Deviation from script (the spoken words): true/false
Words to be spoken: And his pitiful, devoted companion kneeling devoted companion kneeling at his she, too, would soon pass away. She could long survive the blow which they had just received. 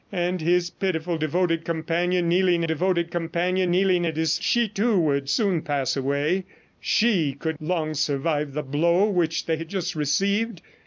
false